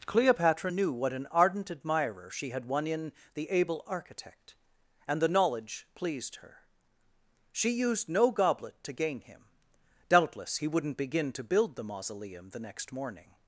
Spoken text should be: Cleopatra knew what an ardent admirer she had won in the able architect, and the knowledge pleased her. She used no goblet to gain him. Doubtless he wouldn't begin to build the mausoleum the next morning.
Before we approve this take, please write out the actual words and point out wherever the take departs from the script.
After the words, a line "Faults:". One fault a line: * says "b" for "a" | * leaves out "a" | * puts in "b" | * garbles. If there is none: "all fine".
Cleopatra knew what an ardent admirer she had won in the able architect, and the knowledge pleased her. She used no goblet to gain him. Doubtless he wouldn't begin to build the mausoleum the next morning.
Faults:
all fine